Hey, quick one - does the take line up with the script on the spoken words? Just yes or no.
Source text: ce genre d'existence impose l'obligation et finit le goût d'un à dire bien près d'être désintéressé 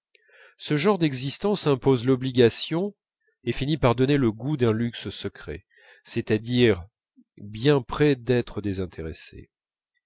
no